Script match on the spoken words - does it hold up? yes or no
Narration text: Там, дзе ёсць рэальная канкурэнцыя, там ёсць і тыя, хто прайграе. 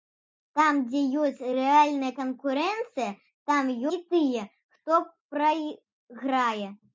no